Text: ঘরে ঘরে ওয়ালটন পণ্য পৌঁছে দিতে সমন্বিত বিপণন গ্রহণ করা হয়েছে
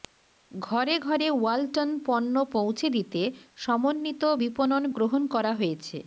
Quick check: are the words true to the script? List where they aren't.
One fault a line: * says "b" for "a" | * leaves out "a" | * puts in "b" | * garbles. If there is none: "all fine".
all fine